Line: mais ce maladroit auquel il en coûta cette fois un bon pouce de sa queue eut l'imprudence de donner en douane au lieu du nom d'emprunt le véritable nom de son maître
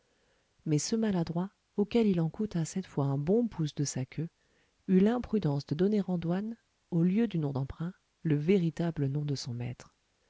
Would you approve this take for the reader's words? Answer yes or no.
yes